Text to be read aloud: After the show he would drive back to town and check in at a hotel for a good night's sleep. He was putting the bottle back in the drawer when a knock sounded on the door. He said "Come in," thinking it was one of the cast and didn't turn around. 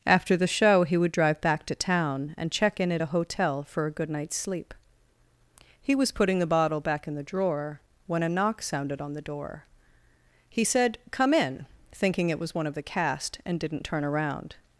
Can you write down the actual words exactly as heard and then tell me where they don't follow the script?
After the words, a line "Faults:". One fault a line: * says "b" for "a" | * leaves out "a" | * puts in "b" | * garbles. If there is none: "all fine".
After the show he would drive back to town and check in at a hotel for a good night's sleep. He was putting the bottle back in the drawer when a knock sounded on the door. He said "Come in," thinking it was one of the cast and didn't turn around.
Faults:
all fine